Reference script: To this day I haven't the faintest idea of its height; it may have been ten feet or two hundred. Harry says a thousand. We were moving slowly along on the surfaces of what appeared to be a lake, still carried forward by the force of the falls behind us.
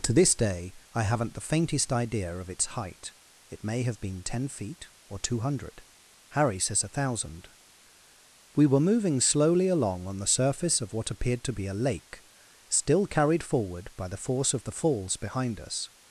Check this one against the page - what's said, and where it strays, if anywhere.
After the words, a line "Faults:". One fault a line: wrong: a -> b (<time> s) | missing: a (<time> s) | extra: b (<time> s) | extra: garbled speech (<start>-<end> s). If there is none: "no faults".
To this day I haven't the faintest idea of its height; it may have been ten feet or two hundred. Harry says a thousand. We were moving slowly along on the surface of what appeared to be a lake, still carried forward by the force of the falls behind us.
Faults:
wrong: surfaces -> surface (10.3 s)